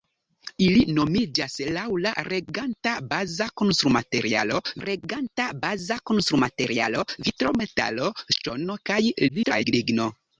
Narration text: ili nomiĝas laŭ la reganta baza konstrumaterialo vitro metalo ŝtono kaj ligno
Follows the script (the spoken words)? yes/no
no